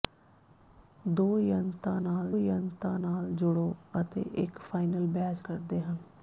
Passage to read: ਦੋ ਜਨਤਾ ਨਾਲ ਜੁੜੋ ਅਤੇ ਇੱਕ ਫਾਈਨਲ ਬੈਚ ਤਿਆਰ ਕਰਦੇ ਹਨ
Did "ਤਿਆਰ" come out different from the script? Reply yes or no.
yes